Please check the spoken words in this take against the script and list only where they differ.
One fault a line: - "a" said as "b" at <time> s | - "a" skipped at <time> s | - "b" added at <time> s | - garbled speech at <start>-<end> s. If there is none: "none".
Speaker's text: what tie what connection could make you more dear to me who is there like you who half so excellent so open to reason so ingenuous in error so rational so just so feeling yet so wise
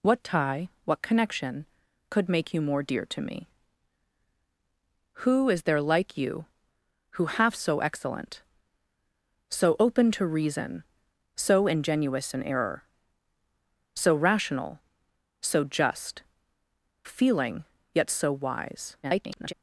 - "so" skipped at 16.2 s
- garbled speech at 19.0-19.5 s